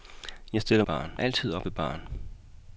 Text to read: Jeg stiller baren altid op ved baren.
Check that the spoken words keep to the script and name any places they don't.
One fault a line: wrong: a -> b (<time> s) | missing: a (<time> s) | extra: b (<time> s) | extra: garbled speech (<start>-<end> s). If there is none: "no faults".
no faults